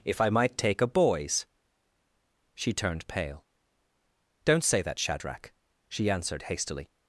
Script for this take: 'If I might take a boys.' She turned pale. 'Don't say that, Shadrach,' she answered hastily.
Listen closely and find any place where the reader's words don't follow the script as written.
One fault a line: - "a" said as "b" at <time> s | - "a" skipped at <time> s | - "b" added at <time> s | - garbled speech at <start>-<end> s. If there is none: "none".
none